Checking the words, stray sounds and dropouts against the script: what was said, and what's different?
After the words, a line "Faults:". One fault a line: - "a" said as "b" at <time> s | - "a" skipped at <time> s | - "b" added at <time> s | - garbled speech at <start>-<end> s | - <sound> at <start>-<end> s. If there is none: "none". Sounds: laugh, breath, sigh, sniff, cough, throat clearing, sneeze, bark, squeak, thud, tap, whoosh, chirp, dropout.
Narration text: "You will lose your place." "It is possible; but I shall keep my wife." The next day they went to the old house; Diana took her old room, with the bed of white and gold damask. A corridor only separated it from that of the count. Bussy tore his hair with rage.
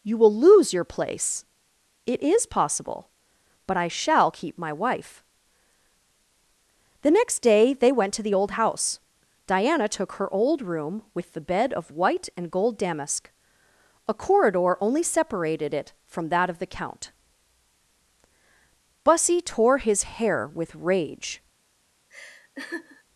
"You will lose your place." "It is possible; but I shall keep my wife." The next day they went to the old house; Diana took her old room, with the bed of white and gold damask. A corridor only separated it from that of the count. Bussy tore his hair with rage.
Faults:
- laugh at 22.1-23.0 s